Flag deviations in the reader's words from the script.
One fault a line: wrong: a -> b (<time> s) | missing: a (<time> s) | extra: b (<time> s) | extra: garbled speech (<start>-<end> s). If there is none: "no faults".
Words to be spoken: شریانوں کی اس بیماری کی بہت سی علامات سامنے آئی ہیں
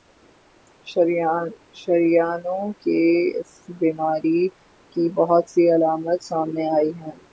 no faults